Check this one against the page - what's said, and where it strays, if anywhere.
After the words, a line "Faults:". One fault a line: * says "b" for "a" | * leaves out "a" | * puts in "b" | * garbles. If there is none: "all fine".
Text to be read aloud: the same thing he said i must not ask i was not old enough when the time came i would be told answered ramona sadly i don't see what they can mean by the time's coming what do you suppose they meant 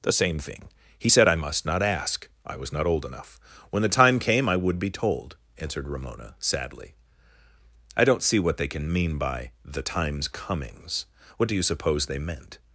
the same thing he said i must not ask i was not old enough when the time came i would be told answered ramona sadly i don't see what they can mean by the time's comings what do you suppose they meant
Faults:
* says "comings" for "coming"